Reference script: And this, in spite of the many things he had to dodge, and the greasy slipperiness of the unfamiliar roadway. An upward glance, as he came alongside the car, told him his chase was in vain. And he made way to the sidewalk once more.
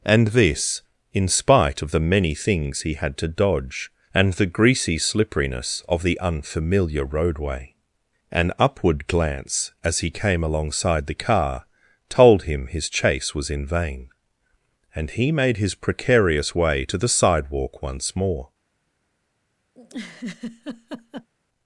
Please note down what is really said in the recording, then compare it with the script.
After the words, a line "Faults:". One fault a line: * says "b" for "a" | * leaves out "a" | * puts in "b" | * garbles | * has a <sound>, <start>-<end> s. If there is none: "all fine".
And this, in spite of the many things he had to dodge, and the greasy slipperiness of the unfamiliar roadway. An upward glance, as he came alongside the car, told him his chase was in vain. And he made his precarious way to the sidewalk once more.
Faults:
* puts in "his precarious"
* has a laugh, 19.7-21.3 s